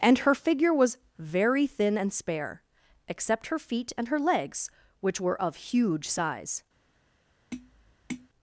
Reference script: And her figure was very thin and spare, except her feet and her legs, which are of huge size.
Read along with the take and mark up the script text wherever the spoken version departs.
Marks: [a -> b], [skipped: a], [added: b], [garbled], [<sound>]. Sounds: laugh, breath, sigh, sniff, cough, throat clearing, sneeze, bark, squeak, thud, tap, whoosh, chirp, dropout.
And her figure was very thin and spare, except her feet and her legs, which [are -> were] of huge size. [tap]